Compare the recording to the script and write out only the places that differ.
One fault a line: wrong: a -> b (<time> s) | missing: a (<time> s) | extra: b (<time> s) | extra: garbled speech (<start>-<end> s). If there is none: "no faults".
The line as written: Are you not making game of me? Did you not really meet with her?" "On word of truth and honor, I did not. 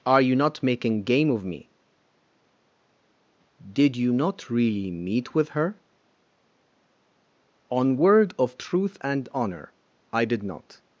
no faults